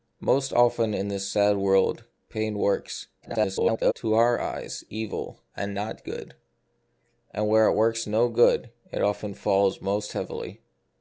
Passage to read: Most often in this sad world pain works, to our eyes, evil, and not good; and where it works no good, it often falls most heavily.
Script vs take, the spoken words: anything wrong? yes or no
yes